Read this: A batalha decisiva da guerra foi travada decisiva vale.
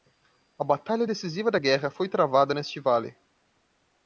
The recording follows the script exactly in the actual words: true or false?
false